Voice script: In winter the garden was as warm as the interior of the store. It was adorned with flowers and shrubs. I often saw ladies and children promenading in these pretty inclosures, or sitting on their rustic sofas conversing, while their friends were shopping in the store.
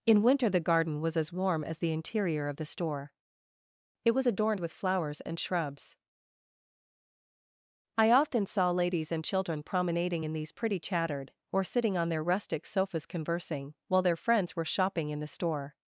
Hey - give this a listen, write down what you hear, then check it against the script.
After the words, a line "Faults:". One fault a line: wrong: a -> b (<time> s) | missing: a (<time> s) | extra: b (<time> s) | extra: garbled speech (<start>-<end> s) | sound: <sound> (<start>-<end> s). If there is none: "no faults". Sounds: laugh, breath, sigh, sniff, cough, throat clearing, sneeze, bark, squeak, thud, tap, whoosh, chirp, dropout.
In winter the garden was as warm as the interior of the store. It was adorned with flowers and shrubs. I often saw ladies and children promenading in these pretty chattered, or sitting on their rustic sofas conversing, while their friends were shopping in the store.
Faults:
wrong: inclosures -> chattered (10.8 s)